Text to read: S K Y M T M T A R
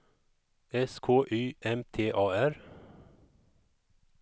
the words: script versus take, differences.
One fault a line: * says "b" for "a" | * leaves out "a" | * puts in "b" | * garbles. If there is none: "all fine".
* leaves out "M T"